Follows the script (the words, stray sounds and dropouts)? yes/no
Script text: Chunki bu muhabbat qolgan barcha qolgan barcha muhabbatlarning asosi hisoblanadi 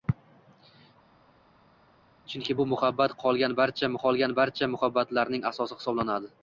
yes